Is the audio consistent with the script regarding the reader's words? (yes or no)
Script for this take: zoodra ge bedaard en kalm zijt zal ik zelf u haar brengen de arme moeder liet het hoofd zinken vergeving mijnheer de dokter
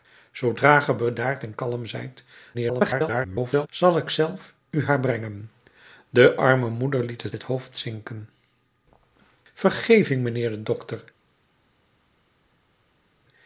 no